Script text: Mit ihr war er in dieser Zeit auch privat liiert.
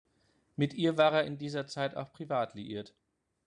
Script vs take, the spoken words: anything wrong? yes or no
no